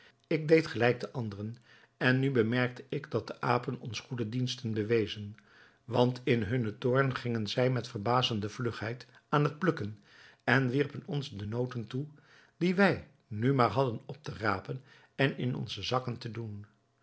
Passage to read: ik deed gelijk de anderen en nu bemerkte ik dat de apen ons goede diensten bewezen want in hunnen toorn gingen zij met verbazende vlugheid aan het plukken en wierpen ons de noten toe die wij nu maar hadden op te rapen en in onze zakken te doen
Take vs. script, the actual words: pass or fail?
pass